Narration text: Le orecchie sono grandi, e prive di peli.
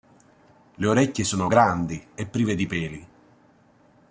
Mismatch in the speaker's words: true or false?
false